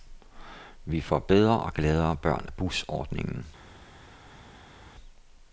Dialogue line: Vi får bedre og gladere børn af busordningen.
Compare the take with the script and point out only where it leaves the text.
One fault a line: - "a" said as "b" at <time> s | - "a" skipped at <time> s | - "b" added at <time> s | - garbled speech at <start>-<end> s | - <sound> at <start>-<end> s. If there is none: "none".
none